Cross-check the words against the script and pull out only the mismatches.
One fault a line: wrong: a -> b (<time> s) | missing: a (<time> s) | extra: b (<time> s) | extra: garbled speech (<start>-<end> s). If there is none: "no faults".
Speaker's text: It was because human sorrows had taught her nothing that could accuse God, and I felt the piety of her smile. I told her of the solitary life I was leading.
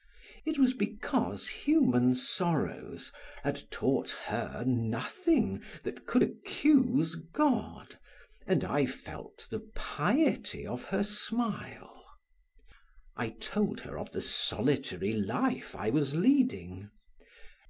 no faults